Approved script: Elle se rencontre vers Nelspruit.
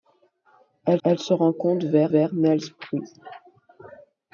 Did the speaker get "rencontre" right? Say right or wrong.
right